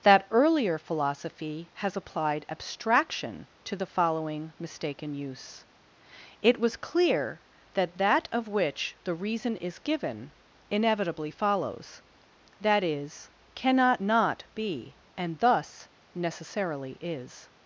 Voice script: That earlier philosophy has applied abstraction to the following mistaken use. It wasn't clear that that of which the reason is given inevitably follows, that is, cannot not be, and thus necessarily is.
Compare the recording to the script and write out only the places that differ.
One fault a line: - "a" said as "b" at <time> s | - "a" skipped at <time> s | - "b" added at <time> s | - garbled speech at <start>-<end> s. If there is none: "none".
- "wasn't" said as "was" at 6.6 s